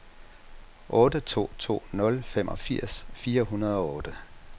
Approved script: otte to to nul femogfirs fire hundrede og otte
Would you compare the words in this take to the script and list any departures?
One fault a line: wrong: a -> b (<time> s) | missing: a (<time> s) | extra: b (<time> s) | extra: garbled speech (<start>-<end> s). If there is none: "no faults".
no faults